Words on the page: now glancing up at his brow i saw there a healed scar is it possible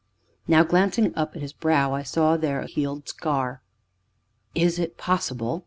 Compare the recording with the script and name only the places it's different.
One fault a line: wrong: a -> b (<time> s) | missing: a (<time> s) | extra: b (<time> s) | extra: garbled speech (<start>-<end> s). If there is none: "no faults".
no faults